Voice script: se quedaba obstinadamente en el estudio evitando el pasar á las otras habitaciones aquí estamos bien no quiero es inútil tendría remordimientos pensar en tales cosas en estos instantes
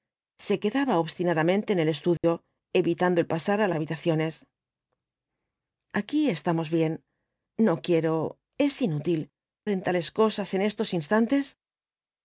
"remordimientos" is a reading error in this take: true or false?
true